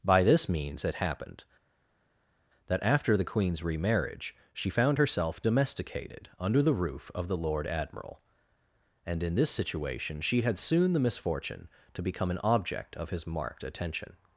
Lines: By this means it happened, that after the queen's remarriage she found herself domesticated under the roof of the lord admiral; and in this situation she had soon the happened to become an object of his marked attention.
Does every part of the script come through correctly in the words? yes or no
no